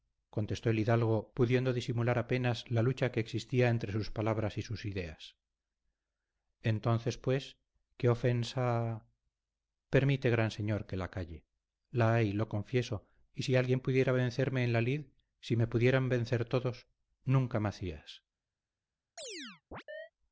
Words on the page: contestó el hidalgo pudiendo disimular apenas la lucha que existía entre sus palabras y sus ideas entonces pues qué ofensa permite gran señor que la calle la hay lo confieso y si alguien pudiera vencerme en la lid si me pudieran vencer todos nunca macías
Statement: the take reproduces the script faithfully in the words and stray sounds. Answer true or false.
false